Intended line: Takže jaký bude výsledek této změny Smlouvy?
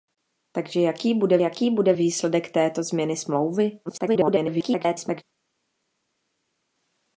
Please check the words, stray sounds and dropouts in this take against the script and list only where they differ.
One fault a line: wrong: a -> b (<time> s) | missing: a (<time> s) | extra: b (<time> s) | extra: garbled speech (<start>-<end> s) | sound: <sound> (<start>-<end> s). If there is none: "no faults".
extra: jaký bude (1.4 s)
extra: garbled speech (3.9-5.2 s)